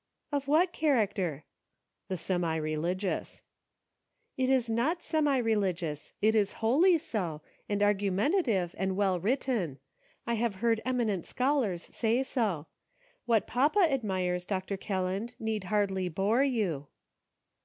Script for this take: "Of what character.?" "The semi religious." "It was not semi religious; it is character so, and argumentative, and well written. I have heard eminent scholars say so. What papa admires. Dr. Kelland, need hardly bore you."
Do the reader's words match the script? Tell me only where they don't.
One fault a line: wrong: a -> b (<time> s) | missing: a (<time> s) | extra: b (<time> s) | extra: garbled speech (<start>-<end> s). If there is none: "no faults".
wrong: was -> is (4.5 s)
wrong: character -> wholly (6.5 s)